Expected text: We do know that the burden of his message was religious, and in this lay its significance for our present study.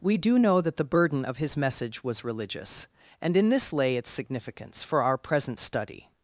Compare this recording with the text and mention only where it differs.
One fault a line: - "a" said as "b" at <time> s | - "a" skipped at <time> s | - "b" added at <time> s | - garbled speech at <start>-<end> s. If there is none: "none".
none